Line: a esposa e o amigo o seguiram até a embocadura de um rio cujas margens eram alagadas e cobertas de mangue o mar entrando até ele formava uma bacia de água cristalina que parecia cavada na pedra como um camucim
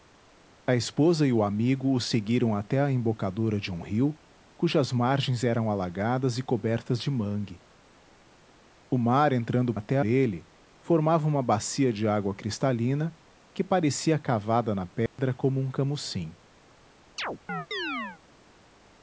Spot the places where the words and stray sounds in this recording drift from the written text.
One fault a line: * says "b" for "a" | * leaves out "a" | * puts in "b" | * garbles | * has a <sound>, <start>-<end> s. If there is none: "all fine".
* has a dropout, 15.1-15.2 s
* has a chirp, 17.2-18.2 s